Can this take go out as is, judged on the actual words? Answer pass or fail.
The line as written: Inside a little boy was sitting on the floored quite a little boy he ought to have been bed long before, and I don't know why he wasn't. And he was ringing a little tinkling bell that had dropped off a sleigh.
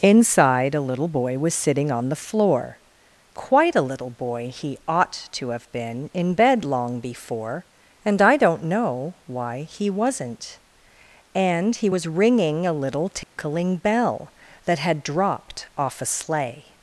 fail